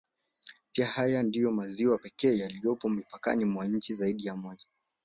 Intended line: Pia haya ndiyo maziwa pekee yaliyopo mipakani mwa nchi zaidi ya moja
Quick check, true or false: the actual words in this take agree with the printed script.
true